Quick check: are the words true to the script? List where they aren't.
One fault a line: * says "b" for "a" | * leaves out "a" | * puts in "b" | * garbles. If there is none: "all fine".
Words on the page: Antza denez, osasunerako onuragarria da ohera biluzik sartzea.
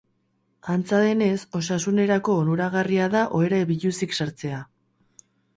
all fine